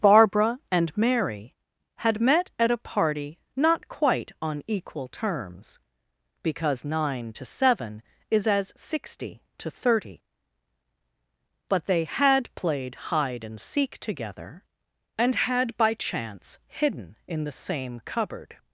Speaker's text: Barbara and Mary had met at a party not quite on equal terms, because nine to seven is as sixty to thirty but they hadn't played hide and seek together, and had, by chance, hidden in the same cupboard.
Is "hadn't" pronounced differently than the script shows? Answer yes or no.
yes